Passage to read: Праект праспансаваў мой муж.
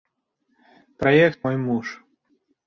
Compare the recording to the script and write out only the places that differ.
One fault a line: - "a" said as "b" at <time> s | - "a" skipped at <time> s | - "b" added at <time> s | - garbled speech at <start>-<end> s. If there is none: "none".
- "праспансаваў" skipped at 1.4 s